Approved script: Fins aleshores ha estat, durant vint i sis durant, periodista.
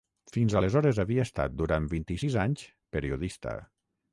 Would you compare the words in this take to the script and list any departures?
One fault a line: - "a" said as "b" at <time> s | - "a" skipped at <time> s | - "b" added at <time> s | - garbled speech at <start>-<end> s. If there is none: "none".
- "ha" said as "havia" at 1.0 s
- "durant" said as "anys" at 2.4 s